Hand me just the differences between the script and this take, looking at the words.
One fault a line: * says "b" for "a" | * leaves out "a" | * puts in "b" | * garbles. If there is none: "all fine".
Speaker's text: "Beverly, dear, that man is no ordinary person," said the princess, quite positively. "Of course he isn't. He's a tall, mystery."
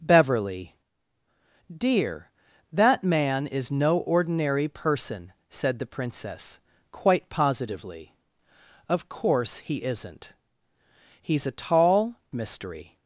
all fine